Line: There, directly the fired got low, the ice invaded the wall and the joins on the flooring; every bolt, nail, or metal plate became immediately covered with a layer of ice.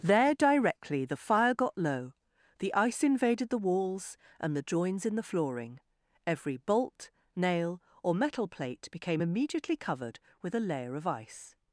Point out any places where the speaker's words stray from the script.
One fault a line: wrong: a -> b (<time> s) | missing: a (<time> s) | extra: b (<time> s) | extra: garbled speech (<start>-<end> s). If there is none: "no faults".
wrong: fired -> fire (1.1 s)
wrong: wall -> walls (3.6 s)
wrong: on -> in (5.0 s)